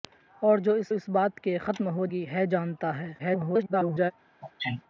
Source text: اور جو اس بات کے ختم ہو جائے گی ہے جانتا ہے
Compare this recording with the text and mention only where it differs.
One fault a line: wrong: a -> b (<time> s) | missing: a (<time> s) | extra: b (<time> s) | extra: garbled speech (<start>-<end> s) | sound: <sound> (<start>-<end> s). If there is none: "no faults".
extra: اس (0.9 s)
missing: جائے (2.1 s)
extra: garbled speech (3.2-4.1 s)
sound: sneeze (4.4-4.8 s)